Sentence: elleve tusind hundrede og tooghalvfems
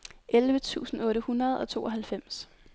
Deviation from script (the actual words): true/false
true